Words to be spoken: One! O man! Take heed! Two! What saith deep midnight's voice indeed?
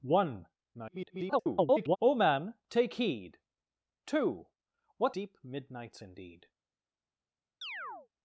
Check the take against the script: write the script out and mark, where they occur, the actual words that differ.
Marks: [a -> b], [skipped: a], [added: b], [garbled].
One! [garbled] O man! Take heed! Two! What [skipped: saith] deep midnight's [skipped: voice] indeed?